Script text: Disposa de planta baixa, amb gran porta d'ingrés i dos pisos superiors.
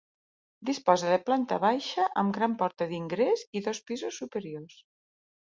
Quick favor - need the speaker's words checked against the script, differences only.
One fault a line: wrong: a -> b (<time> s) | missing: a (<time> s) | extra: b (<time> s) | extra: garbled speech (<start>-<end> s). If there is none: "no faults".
no faults